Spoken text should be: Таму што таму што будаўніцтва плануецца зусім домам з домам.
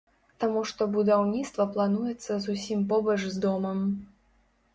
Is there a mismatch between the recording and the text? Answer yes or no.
yes